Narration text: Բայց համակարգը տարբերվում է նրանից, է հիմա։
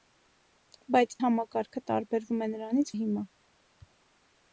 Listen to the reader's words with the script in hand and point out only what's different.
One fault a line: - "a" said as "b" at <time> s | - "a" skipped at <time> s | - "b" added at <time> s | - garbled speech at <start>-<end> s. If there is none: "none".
none